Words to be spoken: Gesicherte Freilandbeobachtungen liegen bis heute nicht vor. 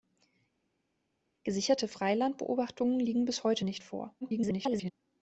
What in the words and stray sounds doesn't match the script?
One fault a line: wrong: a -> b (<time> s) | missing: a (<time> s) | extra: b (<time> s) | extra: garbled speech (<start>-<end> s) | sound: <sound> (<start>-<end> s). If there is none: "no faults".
extra: garbled speech (4.2-4.9 s)